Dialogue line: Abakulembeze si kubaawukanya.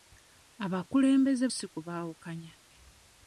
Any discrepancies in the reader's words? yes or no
no